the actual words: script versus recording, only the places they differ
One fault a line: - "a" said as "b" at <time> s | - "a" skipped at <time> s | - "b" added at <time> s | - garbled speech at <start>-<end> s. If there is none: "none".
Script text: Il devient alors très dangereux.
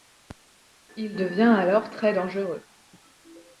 none